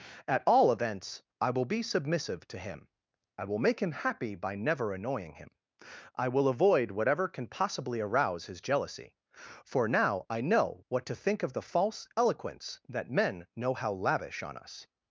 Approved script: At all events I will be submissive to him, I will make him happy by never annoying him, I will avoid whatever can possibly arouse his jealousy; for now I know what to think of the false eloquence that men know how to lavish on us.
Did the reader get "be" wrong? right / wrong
right